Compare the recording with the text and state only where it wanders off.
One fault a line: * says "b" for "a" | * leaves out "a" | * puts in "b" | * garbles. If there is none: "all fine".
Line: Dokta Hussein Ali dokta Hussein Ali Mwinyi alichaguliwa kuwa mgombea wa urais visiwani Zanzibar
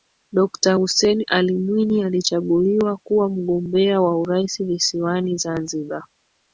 * leaves out "dokta Hussein Ali"